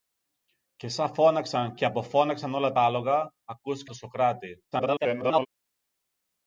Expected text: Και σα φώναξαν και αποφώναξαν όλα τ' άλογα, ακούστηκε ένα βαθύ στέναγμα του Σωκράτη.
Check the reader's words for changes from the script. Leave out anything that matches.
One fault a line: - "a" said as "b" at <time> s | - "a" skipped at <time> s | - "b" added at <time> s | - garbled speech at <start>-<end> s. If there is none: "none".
- "ένα βαθύ στέναγμα" skipped at 3.9 s
- garbled speech at 4.7-5.5 s